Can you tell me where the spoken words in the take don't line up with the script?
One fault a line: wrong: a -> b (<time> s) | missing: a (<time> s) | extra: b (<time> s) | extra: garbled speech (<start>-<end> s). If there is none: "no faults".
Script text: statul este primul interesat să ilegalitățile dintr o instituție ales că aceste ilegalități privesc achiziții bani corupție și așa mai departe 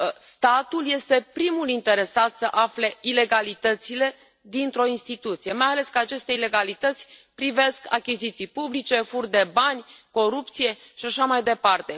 extra: afle (2.5 s)
extra: mai (5.5 s)
extra: publice furt de (8.5 s)